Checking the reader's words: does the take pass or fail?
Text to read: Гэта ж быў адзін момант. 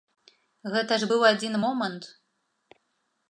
pass